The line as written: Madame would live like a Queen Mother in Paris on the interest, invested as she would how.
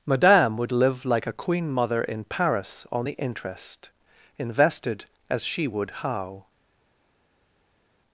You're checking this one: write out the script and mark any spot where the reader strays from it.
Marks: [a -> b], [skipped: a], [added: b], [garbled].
Madame would live like a Queen Mother in Paris on the interest, invested as she would how.